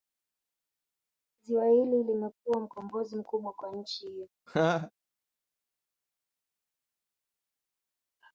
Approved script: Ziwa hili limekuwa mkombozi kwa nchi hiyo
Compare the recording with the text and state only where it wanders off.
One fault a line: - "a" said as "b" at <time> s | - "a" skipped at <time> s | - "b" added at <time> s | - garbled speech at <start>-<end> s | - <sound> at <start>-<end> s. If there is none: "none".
- "mkubwa" added at 3.1 s
- laugh at 4.5-4.9 s